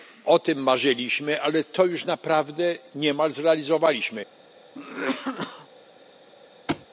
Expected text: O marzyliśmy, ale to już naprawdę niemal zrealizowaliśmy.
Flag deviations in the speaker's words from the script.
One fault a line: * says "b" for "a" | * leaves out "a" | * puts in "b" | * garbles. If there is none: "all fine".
* puts in "tym"